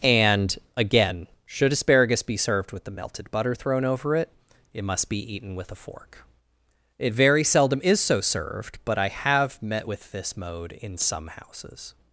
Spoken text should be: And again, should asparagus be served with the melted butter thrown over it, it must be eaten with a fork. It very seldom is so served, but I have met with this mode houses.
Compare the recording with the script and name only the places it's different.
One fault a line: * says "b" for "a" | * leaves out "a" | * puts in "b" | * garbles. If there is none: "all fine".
* puts in "in some"